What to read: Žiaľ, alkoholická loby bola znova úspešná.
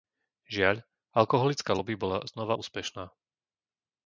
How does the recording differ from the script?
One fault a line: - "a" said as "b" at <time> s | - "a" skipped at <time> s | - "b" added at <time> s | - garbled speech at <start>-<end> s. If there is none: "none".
none